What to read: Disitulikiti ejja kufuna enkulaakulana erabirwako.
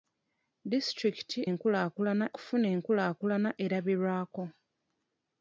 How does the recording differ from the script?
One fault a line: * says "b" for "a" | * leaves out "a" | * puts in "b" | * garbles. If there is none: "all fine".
* says "enkulaakulana" for "ejja"